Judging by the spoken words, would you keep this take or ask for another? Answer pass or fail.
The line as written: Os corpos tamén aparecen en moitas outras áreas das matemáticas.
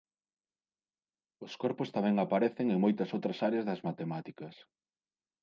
pass